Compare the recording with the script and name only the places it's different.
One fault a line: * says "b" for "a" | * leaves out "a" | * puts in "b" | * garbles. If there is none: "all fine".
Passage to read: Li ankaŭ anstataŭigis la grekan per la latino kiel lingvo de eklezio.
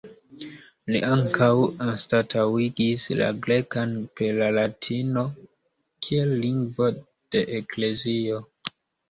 all fine